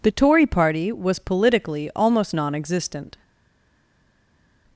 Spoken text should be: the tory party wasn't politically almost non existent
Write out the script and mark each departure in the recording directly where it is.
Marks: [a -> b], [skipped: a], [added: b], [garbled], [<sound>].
the tory party [wasn't -> was] politically almost non existent